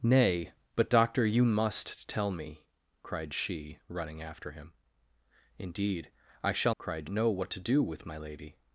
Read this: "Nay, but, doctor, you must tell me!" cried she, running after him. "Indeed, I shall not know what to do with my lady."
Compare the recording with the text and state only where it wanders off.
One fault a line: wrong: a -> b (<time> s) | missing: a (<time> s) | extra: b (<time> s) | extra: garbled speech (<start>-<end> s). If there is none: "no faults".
wrong: not -> cried (6.8 s)